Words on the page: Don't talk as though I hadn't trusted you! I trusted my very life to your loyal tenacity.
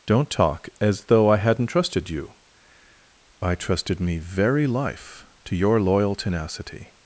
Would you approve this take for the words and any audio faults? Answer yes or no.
no